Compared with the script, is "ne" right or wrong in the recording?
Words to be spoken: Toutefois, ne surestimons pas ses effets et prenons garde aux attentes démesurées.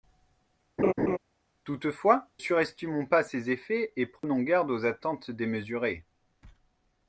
wrong